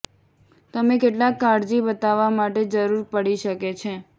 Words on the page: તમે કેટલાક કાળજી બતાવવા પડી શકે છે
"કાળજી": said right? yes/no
yes